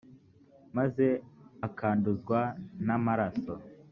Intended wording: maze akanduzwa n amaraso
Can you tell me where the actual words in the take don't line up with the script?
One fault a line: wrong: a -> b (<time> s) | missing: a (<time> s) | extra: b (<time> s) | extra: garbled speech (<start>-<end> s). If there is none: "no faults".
no faults